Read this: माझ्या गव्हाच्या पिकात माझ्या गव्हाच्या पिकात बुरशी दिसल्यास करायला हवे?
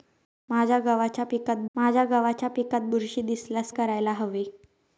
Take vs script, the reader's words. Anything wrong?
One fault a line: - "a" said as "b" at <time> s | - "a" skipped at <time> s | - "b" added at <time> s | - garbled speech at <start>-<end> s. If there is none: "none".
none